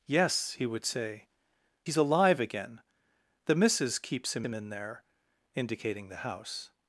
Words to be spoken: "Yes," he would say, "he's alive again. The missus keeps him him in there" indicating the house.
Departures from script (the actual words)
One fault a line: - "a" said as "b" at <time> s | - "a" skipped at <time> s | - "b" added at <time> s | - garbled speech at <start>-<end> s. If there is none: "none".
none